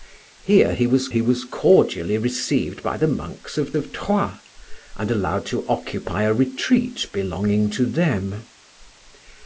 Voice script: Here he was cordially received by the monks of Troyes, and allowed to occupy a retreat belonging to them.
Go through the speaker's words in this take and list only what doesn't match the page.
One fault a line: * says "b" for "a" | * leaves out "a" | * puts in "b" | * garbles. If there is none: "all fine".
* puts in "he was"
* puts in "of"